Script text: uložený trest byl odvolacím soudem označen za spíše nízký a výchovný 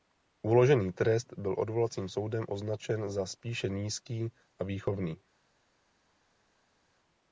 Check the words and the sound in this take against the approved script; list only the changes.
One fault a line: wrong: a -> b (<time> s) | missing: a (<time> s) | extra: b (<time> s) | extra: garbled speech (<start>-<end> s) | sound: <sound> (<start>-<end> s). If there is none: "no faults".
no faults